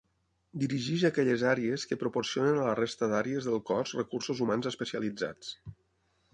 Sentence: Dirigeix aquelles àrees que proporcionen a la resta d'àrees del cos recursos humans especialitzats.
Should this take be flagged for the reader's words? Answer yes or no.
no